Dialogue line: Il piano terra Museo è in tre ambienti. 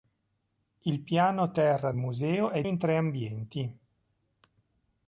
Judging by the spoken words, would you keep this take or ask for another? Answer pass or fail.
pass